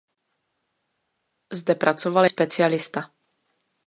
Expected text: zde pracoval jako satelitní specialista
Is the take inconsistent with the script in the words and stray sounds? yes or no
yes